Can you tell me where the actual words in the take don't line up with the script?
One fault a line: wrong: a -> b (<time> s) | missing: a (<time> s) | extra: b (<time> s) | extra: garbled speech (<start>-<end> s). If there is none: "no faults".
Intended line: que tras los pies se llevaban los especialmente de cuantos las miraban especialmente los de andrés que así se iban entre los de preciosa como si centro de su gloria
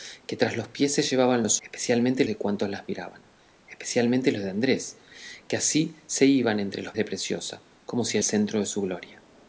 no faults